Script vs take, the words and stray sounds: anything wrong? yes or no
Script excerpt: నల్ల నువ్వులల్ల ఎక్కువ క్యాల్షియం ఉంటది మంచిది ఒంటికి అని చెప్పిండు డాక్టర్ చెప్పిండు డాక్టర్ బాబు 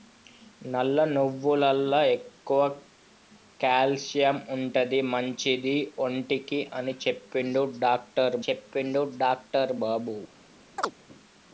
yes